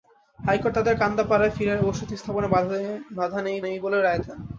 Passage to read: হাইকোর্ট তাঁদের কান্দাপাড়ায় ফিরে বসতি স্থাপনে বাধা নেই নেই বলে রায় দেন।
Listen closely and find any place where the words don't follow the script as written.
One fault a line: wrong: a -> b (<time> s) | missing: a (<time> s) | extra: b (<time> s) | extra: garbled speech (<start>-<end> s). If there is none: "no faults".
no faults